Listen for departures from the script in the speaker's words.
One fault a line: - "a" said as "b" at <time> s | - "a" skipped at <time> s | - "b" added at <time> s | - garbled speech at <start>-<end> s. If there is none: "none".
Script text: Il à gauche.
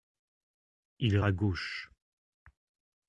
none